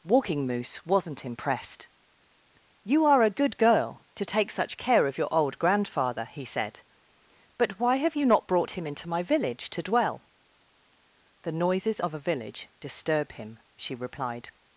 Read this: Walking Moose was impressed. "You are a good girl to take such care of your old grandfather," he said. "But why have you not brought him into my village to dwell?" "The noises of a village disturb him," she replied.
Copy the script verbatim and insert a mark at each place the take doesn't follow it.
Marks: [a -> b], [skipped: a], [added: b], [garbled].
Walking Moose [was -> wasn't] impressed. "You are a good girl to take such care of your old grandfather," he said. "But why have you not brought him into my village to dwell?" "The noises of a village disturb him," she replied.